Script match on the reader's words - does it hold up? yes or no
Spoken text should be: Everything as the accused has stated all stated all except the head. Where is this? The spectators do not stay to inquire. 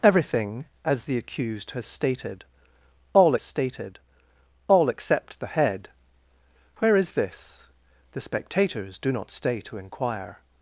yes